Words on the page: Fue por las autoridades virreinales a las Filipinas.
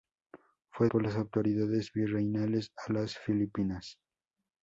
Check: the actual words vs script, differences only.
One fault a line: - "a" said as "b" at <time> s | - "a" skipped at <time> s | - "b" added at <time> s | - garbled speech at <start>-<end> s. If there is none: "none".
none